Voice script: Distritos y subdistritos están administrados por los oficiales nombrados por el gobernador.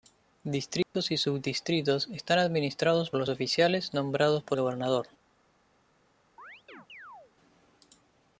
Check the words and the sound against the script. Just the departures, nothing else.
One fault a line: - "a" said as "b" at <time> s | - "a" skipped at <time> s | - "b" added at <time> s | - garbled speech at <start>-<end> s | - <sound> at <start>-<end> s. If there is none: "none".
- dropout at 0.8-0.9 s
- "por" skipped at 3.1 s
- "el" skipped at 4.6 s
- chirp at 6.4-7.3 s